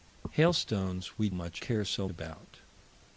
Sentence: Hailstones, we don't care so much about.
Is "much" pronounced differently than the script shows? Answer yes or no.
yes